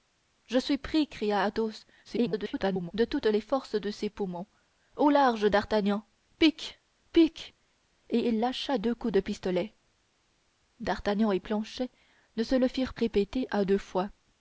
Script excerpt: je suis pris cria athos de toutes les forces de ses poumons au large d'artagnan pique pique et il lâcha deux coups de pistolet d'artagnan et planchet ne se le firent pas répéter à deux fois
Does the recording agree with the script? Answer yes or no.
no